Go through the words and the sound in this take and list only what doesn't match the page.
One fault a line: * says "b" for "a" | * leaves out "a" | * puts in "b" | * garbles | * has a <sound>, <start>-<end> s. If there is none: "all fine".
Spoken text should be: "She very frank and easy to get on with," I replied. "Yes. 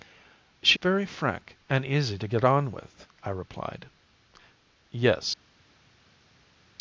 all fine